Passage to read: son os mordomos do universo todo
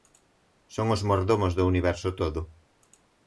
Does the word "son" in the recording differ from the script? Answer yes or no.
no